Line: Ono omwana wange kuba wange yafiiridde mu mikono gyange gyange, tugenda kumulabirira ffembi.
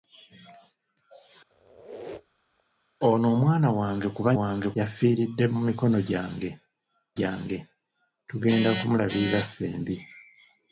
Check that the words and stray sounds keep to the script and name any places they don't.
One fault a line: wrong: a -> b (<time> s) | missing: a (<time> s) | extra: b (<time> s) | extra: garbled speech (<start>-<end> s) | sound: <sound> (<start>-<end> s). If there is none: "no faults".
sound: squeak (1.5-2.6 s)